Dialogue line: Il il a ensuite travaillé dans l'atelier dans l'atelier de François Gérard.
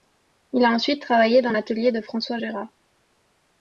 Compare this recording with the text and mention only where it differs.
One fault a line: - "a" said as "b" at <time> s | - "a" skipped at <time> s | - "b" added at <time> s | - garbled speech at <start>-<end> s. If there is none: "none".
- "il" skipped at 0.7 s
- "dans l'atelier" skipped at 1.9 s